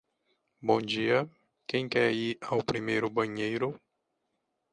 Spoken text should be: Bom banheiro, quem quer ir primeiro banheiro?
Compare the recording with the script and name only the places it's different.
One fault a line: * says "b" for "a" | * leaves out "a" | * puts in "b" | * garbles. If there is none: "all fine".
* says "dia" for "banheiro"
* puts in "ao"